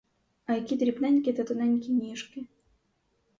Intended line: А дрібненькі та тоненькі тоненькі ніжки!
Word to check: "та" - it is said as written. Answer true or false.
true